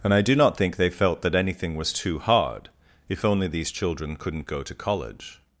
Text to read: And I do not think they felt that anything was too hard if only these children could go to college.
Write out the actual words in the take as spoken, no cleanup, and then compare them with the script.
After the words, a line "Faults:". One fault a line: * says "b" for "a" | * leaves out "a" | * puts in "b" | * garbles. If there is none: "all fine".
And I do not think they felt that anything was too hard if only these children couldn't go to college.
Faults:
* says "couldn't" for "could"